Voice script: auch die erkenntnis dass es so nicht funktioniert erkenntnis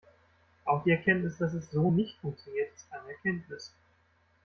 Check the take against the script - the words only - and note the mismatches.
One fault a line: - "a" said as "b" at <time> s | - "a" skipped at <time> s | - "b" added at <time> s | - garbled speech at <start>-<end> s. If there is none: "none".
- "ist eine" added at 2.7 s